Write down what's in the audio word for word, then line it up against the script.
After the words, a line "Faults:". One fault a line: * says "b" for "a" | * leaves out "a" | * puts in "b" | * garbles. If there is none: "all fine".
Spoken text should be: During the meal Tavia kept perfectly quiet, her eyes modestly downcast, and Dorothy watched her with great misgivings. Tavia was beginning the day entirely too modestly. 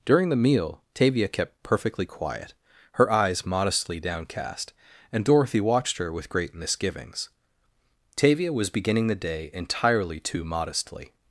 During the meal Tavia kept perfectly quiet, her eyes modestly downcast, and Dorothy watched her with great misgivings. Tavia was beginning the day entirely too modestly.
Faults:
all fine